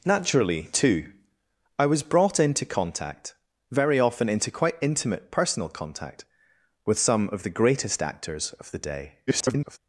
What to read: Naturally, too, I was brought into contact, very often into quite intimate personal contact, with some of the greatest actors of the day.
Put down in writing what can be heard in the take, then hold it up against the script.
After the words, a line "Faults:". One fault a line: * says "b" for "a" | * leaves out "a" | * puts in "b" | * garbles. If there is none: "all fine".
Naturally, too, I was brought into contact, very often into quite intimate personal contact, with some of the greatest actors of the day. [garbled]
Faults:
* garbles